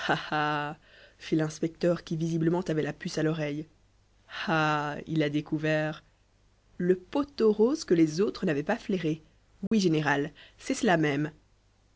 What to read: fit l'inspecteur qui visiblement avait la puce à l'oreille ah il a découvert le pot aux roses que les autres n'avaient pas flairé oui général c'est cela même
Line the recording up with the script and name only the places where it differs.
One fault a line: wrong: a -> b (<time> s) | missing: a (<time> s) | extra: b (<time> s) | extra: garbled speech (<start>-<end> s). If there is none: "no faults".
no faults